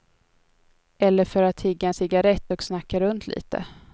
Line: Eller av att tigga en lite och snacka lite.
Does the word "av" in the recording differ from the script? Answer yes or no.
yes